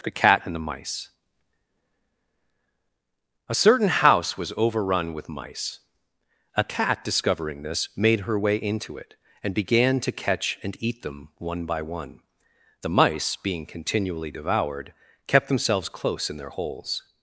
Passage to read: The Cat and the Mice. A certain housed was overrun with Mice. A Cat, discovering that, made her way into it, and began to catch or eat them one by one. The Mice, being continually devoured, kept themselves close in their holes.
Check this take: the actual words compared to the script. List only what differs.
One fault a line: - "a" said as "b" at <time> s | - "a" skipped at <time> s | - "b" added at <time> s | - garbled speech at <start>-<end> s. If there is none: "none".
- "housed" said as "house" at 3.9 s
- "that" said as "this" at 7.6 s
- "or" said as "and" at 10.6 s